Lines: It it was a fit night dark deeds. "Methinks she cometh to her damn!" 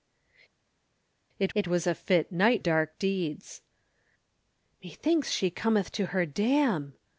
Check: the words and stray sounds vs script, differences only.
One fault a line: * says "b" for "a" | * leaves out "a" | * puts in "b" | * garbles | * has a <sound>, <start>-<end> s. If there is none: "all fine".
all fine